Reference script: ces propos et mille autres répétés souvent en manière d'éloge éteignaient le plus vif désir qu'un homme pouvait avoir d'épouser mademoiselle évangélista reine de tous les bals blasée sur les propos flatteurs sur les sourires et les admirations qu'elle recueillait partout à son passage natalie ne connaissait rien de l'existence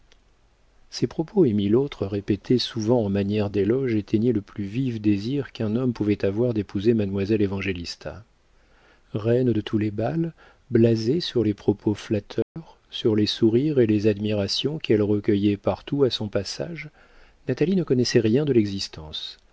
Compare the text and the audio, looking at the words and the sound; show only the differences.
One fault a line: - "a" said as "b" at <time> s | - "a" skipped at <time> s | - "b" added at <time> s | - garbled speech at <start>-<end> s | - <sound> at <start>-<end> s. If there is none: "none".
- dropout at 12.4-12.6 s